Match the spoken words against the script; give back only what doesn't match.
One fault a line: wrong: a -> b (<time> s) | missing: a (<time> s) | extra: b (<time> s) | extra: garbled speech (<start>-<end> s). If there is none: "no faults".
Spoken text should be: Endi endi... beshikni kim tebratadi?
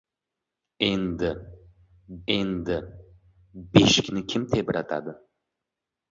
no faults